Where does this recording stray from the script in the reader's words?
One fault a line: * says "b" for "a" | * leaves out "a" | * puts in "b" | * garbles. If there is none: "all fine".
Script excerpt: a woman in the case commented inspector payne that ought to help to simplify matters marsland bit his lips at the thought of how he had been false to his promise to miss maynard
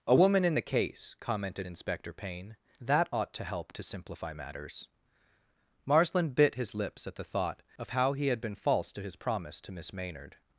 all fine